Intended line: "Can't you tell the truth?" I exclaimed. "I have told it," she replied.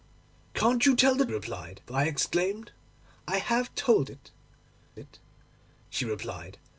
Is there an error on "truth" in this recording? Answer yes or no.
yes